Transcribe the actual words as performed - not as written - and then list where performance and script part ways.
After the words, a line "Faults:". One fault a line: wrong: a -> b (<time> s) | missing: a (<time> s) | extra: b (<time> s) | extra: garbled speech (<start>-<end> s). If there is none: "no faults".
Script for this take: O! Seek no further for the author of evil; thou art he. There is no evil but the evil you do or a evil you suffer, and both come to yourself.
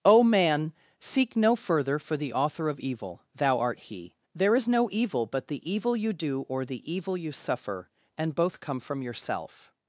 O Man! seek no further for the author of evil; thou art he. There is no evil but the evil you do or the evil you suffer, and both come from yourself.
Faults:
extra: Man (0.2 s)
wrong: a -> the (6.6 s)
wrong: to -> from (8.8 s)